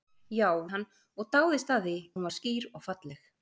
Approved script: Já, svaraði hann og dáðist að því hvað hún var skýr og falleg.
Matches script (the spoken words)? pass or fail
fail